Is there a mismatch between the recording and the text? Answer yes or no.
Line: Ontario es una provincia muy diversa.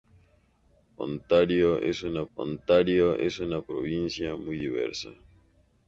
yes